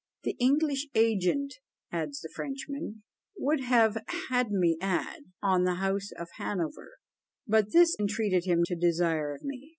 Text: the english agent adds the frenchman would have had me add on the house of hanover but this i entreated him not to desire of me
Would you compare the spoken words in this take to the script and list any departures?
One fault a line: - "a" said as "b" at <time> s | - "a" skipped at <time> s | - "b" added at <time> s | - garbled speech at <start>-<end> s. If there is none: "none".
- "i" skipped at 8.0 s
- "not" skipped at 8.6 s